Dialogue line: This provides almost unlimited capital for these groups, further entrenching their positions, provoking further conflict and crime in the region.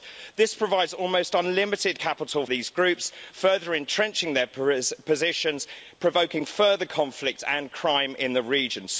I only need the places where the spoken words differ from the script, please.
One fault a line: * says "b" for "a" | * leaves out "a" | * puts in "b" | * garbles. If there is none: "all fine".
* leaves out "for"